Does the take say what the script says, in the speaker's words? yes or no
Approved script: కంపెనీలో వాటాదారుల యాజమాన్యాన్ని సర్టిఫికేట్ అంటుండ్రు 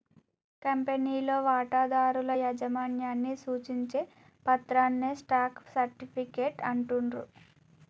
no